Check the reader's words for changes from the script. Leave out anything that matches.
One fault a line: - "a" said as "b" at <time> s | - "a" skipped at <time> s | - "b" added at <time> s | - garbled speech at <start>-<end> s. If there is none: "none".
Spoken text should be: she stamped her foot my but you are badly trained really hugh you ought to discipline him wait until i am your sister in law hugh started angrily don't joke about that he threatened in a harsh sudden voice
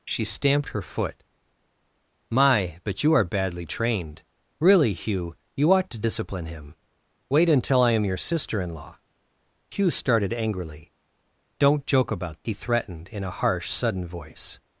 - "that" skipped at 12.4 s